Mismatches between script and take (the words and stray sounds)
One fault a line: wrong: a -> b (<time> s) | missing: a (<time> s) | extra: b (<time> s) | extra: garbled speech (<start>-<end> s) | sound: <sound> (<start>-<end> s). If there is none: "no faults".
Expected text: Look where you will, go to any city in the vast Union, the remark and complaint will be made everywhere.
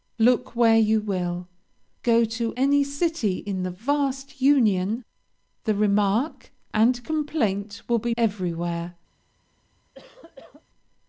missing: made (8.1 s)
sound: cough (9.9-10.6 s)